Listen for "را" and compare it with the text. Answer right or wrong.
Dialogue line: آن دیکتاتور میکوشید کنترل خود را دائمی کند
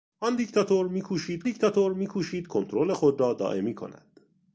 right